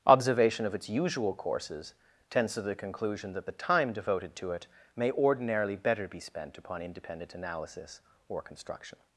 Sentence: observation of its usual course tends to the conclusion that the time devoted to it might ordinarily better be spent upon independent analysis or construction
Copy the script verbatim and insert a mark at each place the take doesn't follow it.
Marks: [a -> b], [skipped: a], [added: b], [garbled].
observation of its usual [course -> courses] tends to the conclusion that the time devoted to it [might -> may] ordinarily better be spent upon independent analysis or construction